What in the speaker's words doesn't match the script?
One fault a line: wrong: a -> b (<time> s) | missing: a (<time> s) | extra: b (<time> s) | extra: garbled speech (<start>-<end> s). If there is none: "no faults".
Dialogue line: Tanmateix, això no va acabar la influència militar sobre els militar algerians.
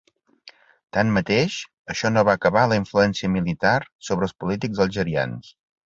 wrong: militar -> polítics (4.5 s)